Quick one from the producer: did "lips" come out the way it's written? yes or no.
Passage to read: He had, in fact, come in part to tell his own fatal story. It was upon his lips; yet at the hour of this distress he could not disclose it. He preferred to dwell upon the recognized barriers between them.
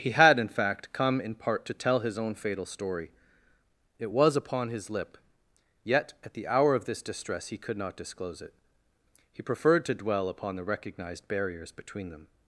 no